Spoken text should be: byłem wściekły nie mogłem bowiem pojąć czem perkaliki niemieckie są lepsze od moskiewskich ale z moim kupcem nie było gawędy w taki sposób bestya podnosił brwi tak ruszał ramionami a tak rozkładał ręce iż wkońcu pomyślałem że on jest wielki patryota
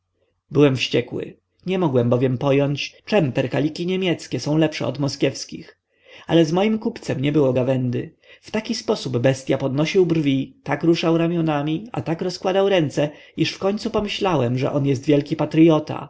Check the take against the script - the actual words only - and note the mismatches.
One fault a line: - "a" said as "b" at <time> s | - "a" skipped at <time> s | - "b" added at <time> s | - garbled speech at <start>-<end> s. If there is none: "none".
none